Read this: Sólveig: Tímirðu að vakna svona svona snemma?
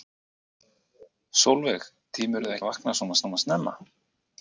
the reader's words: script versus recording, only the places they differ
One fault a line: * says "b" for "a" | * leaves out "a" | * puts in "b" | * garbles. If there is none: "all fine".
all fine